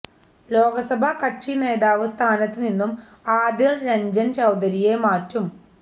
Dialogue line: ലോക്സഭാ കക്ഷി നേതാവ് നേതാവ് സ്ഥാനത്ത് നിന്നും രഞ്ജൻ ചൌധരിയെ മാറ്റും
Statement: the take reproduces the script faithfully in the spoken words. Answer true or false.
false